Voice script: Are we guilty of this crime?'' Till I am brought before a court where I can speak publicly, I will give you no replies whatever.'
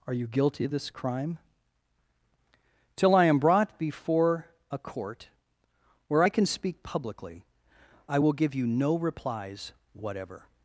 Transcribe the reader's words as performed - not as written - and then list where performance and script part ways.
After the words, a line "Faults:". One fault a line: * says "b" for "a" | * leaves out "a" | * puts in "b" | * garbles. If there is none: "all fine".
Are you guilty of this crime?'' Till I am brought before a court where I can speak publicly, I will give you no replies whatever.'
Faults:
* says "you" for "we"